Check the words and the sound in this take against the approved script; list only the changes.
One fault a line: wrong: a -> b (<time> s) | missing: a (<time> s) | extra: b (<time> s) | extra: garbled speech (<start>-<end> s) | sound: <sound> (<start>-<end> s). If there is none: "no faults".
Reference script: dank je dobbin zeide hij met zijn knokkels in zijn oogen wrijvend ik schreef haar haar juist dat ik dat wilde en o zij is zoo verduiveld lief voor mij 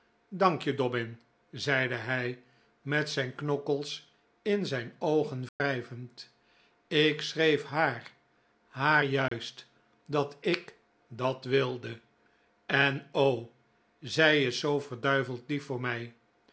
sound: dropout (5.5-5.6 s)
sound: dropout (9.3-9.3 s)